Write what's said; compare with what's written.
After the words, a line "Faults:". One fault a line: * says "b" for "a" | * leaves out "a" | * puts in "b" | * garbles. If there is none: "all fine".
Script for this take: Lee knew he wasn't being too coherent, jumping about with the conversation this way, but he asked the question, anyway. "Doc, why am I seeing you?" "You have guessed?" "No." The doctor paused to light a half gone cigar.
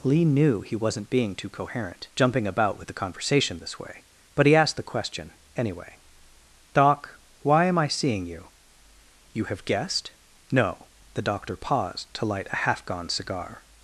Lee knew he wasn't being too coherent, jumping about with the conversation this way, but he asked the question, anyway. "Doc, why am I seeing you?" "You have guessed?" "No." The doctor paused to light a half gone cigar.
Faults:
all fine